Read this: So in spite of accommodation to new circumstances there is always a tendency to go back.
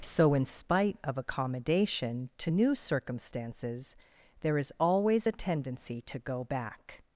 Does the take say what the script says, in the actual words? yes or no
yes